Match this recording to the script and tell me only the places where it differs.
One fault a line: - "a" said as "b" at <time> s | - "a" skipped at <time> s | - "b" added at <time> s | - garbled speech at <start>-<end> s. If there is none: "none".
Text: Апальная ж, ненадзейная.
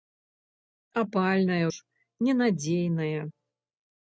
none